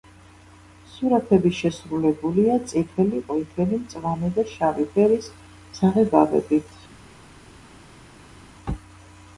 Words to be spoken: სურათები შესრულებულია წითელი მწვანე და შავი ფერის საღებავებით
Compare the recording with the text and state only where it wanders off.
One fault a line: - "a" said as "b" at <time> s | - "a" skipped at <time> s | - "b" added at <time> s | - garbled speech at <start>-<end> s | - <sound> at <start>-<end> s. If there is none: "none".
- "ყვითელი" added at 3.3 s